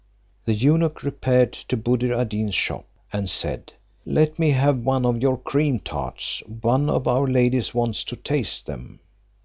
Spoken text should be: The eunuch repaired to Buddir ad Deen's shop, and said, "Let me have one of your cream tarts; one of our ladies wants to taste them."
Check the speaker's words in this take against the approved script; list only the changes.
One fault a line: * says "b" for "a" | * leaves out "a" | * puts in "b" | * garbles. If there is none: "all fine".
all fine